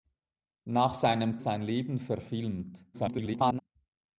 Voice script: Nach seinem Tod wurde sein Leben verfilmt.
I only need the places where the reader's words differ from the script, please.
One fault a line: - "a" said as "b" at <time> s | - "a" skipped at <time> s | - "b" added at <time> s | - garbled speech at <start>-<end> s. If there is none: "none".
- "Tod wurde" skipped at 1.4 s
- garbled speech at 2.9-3.6 s